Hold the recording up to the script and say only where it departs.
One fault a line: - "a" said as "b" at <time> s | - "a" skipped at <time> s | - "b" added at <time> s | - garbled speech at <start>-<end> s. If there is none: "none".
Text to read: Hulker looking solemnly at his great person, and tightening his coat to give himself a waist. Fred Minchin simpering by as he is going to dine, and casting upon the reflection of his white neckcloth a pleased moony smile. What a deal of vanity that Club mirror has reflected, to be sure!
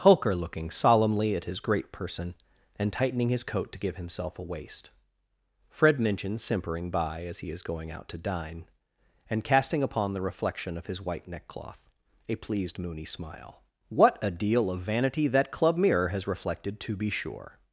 - "out" added at 7.9 s